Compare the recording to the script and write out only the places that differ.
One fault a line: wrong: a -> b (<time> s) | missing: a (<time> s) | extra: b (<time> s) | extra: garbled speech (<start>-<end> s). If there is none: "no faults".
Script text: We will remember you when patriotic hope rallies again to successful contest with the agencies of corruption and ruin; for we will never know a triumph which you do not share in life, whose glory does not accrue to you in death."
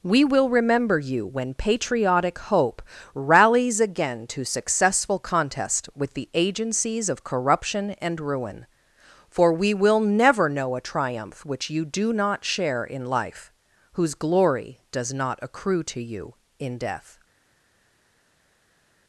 no faults